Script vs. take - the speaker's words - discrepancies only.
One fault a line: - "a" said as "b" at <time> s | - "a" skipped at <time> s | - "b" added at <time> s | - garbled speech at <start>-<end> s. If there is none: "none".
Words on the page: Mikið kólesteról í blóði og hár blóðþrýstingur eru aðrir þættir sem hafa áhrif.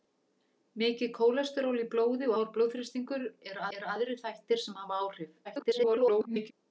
- "og" skipped at 2.3 s
- "eru" added at 3.8 s
- garbled speech at 5.4-6.5 s